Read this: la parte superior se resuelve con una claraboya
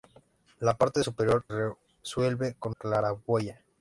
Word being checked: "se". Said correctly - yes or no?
no